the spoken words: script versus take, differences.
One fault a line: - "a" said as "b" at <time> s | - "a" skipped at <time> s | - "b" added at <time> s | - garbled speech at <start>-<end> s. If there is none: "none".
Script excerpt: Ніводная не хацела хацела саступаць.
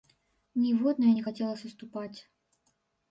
- "хацела" skipped at 1.5 s